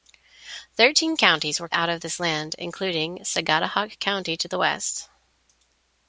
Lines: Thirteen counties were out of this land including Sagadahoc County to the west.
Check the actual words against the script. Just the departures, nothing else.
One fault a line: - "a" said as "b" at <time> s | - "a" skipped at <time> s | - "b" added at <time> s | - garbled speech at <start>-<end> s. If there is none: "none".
none